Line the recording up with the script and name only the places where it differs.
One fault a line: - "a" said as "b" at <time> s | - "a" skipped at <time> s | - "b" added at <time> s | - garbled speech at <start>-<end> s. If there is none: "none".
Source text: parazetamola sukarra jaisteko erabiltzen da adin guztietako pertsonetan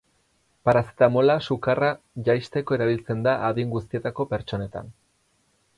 none